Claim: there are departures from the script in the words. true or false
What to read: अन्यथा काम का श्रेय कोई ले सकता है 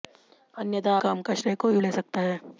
false